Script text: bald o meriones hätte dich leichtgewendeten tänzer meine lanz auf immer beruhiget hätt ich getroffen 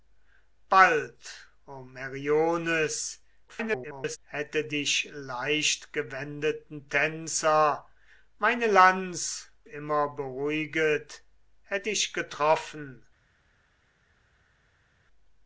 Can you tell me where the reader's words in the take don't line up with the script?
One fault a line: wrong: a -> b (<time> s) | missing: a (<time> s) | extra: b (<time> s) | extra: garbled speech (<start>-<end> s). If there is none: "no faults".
extra: garbled speech (3.5-4.2 s)
missing: auf (9.5 s)